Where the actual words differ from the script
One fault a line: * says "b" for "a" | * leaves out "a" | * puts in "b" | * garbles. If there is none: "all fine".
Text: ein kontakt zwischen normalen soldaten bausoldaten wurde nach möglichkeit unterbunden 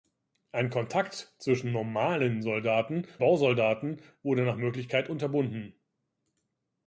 all fine